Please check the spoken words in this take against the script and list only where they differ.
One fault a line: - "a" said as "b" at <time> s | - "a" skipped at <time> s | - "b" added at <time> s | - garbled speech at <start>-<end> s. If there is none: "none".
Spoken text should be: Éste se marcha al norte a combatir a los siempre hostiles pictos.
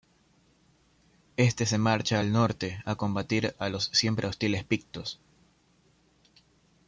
none